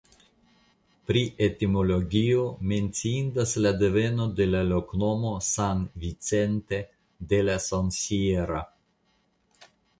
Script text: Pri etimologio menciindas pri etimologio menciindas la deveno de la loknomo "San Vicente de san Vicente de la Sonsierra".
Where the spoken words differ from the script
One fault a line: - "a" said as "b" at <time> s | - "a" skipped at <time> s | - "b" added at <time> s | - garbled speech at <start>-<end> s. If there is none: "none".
- "pri etimologio menciindas" skipped at 3.5 s
- "san Vicente de" skipped at 7.5 s